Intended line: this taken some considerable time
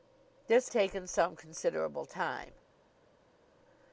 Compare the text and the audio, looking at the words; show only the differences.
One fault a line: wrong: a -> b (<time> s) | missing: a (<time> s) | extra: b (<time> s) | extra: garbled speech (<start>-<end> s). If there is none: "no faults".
no faults